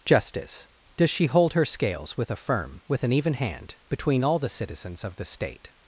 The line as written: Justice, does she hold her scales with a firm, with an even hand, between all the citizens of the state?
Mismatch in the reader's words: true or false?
false